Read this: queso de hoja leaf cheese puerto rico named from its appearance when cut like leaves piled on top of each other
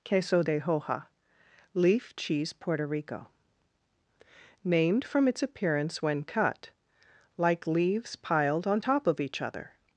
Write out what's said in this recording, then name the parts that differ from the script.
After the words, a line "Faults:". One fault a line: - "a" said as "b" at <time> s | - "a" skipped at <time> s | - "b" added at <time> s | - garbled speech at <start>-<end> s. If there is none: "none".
queso de hoja leaf cheese puerto rico named from its appearance when cut like leaves piled on top of each other
Faults:
none